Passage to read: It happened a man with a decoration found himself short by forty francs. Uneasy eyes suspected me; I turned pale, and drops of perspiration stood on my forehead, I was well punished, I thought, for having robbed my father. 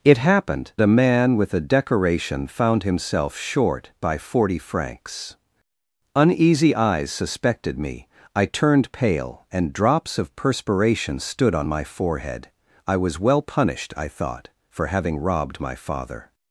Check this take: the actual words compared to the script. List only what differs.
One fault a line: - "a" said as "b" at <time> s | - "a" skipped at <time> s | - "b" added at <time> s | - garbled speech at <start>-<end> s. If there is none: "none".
none